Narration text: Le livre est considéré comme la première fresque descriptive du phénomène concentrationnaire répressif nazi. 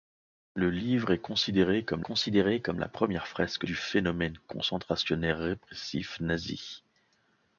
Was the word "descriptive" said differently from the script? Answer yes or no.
yes